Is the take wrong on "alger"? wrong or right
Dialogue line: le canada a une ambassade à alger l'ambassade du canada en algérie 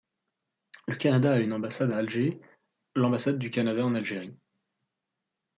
right